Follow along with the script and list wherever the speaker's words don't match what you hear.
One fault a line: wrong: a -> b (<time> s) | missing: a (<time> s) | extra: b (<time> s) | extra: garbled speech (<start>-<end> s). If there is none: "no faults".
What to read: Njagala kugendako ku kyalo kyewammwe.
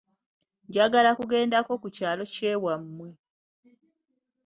no faults